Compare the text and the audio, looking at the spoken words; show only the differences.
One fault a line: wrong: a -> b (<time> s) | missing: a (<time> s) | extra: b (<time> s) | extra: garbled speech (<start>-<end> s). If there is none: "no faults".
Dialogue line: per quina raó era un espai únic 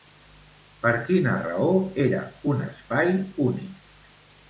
no faults